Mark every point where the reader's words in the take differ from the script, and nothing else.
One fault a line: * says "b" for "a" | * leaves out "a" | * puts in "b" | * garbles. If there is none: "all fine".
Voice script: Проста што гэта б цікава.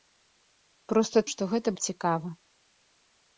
all fine